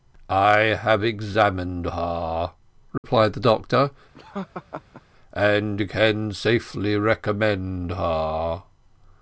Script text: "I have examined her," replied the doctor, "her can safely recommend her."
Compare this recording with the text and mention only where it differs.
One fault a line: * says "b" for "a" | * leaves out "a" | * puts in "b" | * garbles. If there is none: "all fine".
* says "and" for "her"